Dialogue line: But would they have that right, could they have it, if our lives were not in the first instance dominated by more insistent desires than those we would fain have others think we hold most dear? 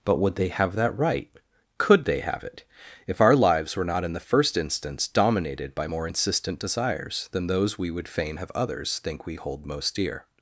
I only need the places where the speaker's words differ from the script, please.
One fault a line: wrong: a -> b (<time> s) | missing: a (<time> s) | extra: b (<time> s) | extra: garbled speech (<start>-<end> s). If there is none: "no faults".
no faults